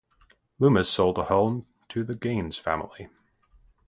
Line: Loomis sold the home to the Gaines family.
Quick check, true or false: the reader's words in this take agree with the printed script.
true